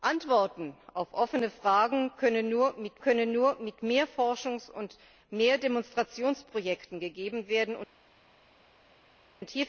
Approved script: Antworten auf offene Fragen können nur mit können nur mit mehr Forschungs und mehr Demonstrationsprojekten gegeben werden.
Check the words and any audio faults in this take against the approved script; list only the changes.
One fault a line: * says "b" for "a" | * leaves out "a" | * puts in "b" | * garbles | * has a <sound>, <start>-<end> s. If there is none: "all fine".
all fine